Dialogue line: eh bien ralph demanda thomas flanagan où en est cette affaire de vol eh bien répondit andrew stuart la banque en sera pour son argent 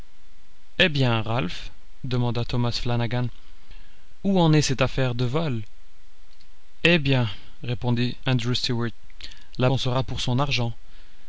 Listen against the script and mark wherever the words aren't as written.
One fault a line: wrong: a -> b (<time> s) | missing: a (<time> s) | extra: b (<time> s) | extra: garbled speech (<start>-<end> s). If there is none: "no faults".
missing: banque (9.7 s)